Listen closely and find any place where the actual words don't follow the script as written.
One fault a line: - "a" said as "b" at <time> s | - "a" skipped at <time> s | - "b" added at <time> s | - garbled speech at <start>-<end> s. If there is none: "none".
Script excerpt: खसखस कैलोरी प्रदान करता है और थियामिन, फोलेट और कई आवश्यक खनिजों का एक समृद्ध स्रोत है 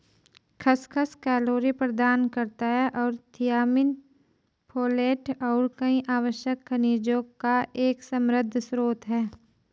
none